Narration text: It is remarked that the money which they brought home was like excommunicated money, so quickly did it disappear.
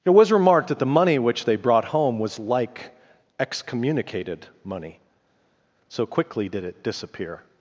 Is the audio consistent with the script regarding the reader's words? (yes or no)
no